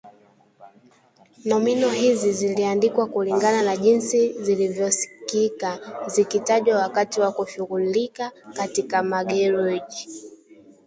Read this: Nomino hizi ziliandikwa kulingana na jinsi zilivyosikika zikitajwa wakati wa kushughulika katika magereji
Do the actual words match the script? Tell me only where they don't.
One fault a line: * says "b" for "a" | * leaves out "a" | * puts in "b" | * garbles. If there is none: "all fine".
all fine